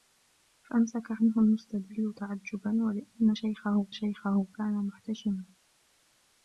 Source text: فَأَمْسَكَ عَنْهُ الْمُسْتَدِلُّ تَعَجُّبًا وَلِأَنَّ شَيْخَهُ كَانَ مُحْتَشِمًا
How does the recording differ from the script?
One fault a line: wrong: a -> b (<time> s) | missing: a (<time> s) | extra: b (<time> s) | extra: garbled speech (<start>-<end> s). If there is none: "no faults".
extra: شَيْخَهُ (3.9 s)